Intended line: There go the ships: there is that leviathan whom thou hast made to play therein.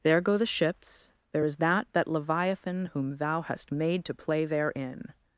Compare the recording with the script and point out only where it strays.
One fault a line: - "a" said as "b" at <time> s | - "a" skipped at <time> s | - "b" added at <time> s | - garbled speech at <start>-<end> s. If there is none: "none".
- "that" added at 1.9 s